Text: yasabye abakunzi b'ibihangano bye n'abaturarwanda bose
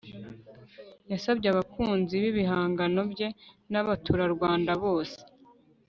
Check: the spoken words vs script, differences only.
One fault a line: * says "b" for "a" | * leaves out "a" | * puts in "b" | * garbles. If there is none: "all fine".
all fine